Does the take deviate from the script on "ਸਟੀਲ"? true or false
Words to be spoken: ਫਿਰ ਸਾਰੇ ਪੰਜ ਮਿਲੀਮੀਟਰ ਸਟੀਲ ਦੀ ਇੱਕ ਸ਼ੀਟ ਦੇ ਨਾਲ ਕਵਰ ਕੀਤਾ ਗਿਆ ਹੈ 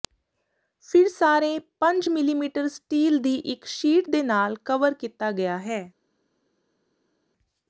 false